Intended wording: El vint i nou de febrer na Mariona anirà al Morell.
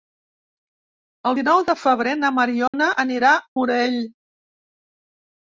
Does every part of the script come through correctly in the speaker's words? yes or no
no